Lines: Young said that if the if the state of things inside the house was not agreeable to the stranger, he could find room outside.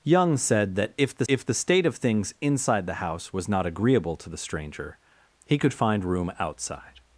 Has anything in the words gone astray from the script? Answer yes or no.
no